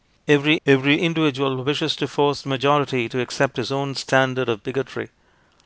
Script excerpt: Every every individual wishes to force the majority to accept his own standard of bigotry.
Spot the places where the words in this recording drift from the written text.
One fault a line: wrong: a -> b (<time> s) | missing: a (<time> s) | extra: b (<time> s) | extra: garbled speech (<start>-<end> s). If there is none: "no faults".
no faults